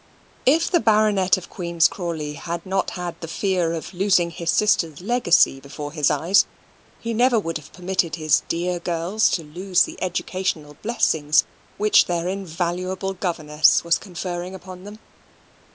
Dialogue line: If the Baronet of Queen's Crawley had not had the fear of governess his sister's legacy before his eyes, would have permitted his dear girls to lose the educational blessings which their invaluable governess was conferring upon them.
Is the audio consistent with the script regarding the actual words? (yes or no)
no